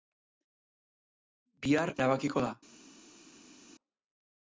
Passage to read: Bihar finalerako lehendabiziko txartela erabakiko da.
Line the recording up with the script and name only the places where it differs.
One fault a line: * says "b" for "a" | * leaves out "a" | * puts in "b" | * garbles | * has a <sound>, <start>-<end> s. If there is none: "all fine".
* leaves out "finalerako lehendabiziko txartela"